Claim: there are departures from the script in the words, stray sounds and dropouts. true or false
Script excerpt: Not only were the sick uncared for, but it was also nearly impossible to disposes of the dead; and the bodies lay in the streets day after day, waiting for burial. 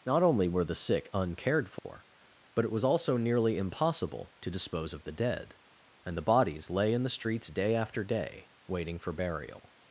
true